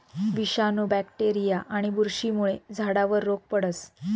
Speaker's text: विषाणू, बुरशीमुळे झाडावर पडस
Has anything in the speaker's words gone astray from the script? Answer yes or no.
yes